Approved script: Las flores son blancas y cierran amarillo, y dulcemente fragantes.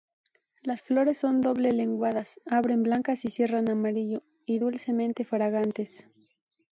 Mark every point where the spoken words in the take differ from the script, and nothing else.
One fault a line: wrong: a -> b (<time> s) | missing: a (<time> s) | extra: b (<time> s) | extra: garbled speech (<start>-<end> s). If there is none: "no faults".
extra: doble lenguadas abren (1.4 s)